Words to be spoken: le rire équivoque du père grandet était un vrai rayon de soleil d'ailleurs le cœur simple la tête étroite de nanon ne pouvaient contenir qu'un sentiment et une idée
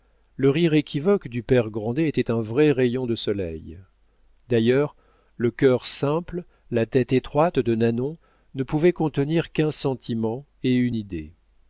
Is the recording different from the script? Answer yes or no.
no